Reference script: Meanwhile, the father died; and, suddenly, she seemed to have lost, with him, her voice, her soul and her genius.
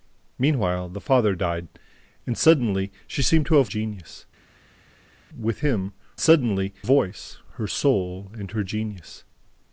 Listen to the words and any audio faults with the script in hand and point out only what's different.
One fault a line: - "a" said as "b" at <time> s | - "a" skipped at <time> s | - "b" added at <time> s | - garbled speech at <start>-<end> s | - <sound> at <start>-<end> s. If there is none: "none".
- "lost" said as "genius" at 3.6 s
- "her" said as "suddenly" at 6.2 s